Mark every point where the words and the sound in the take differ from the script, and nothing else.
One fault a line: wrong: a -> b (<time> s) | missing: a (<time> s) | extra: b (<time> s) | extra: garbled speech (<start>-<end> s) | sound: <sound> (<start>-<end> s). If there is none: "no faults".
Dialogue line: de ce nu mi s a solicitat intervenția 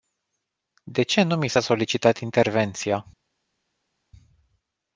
no faults